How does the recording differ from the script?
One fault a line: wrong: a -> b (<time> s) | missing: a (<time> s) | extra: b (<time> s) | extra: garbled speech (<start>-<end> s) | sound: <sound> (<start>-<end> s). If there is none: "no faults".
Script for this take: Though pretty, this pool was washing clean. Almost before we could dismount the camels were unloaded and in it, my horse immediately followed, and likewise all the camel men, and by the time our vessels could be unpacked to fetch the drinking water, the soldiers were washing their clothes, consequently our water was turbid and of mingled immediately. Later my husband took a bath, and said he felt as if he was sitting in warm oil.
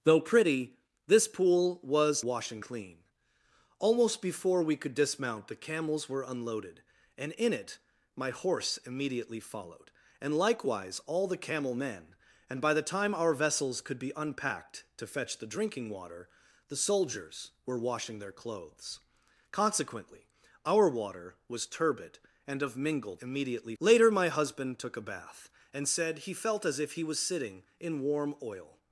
no faults